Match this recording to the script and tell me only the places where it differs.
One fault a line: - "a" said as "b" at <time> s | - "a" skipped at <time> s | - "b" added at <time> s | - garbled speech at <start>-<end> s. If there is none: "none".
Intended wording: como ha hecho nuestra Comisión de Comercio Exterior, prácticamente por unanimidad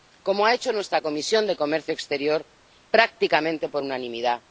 none